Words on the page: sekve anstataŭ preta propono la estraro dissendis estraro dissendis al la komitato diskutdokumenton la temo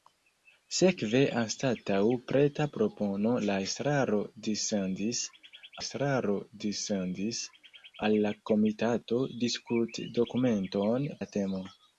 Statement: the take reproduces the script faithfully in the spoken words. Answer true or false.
true